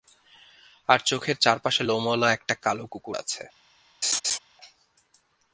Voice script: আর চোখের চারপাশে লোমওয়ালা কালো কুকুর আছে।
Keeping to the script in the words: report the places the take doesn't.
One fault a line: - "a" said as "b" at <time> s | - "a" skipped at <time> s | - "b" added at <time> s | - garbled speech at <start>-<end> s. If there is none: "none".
- "একটা" added at 2.3 s